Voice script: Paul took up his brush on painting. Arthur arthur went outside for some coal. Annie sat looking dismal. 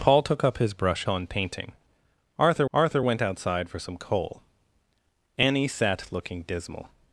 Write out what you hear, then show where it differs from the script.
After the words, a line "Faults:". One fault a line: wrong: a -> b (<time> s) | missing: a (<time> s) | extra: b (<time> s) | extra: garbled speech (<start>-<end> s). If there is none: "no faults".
Paul took up his brush on painting. Arthur arthur went outside for some coal. Annie sat looking dismal.
Faults:
no faults